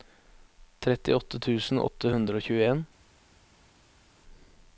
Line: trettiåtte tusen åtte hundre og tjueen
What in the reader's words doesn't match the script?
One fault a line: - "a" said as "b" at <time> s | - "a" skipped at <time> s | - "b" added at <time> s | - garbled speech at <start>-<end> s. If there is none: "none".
none